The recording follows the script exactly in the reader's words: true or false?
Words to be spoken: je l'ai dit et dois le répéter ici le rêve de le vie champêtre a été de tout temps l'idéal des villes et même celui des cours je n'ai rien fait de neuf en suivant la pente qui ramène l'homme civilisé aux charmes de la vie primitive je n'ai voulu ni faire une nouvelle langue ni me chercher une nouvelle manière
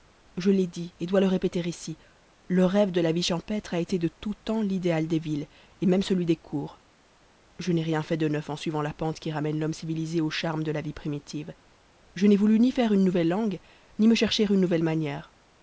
false